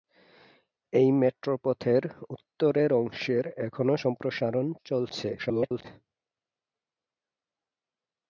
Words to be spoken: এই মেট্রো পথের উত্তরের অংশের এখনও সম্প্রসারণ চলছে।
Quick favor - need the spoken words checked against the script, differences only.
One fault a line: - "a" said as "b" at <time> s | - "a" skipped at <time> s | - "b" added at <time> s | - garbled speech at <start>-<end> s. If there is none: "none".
- garbled speech at 5.4-5.8 s